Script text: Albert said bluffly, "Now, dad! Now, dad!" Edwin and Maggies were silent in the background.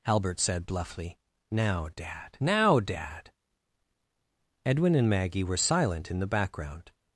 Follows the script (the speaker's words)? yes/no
no